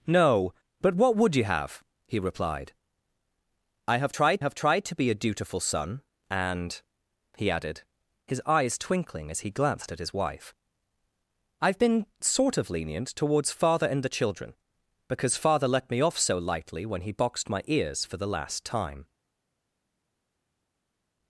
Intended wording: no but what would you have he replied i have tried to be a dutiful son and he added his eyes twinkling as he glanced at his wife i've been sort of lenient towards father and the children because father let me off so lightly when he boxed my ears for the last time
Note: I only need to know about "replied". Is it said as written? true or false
true